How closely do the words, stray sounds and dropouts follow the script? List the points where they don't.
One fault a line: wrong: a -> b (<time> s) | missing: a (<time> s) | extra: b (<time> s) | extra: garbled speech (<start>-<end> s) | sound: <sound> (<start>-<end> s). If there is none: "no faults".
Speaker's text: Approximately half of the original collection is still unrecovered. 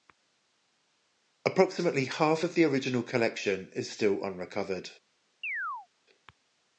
sound: chirp (5.4-5.9 s)